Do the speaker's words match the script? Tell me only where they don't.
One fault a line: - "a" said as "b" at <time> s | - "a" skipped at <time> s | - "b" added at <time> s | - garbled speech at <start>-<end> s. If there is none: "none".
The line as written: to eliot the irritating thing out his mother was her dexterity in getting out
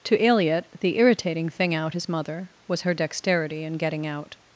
none